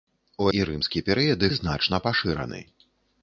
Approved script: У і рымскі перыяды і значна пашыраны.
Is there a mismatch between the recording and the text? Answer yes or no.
no